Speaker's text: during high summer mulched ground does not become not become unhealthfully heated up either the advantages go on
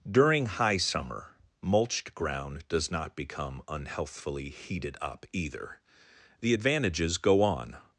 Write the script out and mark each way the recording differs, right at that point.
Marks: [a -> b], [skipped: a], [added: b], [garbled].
during high summer mulched ground does not become [skipped: not become] unhealthfully heated up either the advantages go on